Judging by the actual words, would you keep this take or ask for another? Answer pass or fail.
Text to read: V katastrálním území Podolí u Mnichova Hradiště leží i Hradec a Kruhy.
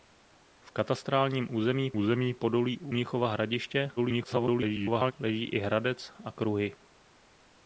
fail